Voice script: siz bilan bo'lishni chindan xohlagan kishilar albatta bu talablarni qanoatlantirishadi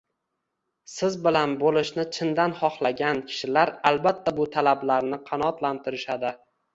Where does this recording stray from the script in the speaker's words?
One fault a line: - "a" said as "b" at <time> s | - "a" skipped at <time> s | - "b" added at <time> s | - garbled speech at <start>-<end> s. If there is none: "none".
none